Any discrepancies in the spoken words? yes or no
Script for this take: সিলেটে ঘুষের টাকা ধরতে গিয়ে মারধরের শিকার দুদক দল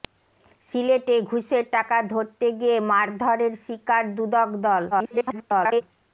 yes